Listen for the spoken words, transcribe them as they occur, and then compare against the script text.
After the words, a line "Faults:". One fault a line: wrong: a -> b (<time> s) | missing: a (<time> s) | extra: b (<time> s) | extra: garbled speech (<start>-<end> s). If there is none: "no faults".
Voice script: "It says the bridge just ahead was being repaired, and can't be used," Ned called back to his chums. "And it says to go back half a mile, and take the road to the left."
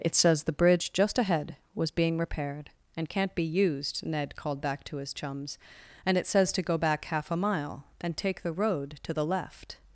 "It says the bridge just ahead was being repaired, and can't be used," Ned called back to his chums. "And it says to go back half a mile, and take the road to the left."
Faults:
no faults